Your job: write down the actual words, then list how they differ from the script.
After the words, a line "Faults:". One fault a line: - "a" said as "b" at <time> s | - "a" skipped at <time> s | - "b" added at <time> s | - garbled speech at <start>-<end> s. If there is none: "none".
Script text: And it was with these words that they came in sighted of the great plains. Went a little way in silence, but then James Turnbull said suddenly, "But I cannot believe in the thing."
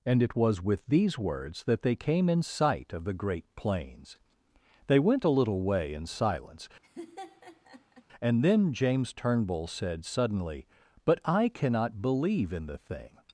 And it was with these words that they came in sight of the great plains. They went a little way in silence, and then James Turnbull said suddenly, "But I cannot believe in the thing."
Faults:
- "sighted" said as "sight" at 2.4 s
- "They" added at 4.9 s
- "but" said as "and" at 8.2 s